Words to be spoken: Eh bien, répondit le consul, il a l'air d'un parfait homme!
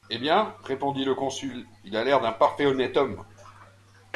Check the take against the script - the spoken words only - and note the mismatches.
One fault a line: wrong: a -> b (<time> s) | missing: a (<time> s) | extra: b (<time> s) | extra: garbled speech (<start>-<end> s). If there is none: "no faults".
extra: honnête (2.6 s)